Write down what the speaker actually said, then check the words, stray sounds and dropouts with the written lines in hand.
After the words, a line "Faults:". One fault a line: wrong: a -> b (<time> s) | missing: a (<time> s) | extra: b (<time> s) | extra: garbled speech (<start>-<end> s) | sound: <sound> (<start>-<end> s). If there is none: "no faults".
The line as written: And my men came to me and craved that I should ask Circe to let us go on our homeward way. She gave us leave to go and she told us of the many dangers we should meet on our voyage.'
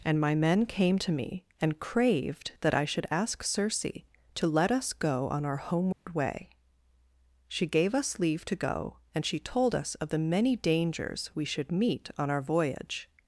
And my men came to me and craved that I should ask Circe to let us go on our homeward way. She gave us leave to go and she told us of the many dangers we should meet on our voyage.'
Faults:
sound: dropout (5.9-6.1 s)